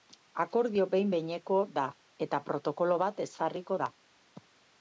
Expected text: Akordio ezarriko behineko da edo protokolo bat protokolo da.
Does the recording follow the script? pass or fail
fail